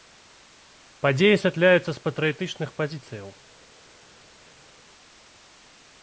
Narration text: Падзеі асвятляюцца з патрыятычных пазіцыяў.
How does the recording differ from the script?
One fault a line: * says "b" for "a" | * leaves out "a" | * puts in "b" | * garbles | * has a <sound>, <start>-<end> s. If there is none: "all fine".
all fine